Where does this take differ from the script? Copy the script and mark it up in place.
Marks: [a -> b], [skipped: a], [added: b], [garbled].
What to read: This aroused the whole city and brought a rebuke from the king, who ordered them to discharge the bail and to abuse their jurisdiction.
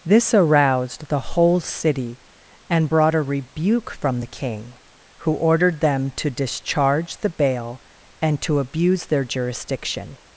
This aroused the whole city and brought a rebuke from the king, who ordered them to discharge the bail and to abuse their jurisdiction.